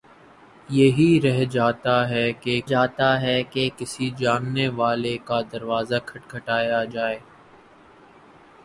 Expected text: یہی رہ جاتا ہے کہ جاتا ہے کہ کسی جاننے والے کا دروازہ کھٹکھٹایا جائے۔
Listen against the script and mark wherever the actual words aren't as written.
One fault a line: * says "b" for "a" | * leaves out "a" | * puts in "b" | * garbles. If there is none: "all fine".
all fine